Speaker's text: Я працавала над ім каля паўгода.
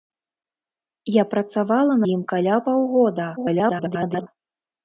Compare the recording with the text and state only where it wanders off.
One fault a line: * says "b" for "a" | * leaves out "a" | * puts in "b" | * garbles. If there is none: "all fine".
* leaves out "над"
* garbles